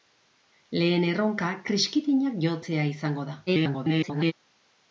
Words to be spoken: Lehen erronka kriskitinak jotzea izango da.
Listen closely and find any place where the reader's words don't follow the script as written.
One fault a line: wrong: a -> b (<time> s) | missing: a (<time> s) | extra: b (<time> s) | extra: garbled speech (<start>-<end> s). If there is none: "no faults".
extra: garbled speech (3.5-4.3 s)